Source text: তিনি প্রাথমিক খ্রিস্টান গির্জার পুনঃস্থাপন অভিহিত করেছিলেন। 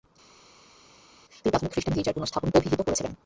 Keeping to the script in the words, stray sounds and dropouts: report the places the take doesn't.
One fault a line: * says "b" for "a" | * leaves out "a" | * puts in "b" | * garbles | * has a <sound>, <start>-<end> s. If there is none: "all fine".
all fine